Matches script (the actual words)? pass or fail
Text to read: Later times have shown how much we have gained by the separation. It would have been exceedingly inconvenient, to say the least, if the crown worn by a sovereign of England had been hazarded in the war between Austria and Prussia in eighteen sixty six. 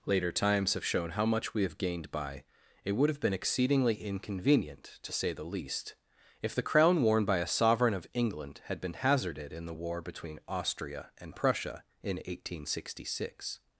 fail